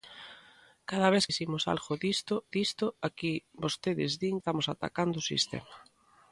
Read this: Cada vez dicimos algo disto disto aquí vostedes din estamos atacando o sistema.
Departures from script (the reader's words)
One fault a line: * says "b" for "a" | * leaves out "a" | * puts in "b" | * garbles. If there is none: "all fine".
all fine